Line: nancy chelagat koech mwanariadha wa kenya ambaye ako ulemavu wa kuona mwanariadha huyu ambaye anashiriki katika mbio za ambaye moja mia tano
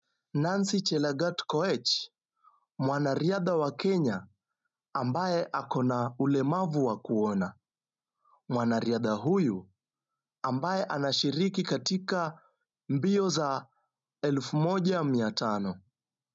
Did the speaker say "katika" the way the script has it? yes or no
yes